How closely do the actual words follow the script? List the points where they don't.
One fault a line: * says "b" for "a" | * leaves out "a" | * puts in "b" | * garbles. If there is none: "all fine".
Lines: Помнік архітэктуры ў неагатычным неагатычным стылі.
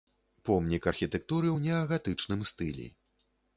* leaves out "неагатычным"